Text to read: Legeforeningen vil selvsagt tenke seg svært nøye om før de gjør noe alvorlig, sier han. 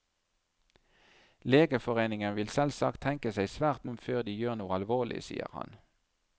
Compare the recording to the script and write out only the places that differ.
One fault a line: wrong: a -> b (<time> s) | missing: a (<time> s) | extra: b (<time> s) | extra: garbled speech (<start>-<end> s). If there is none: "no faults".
missing: nøye (3.9 s)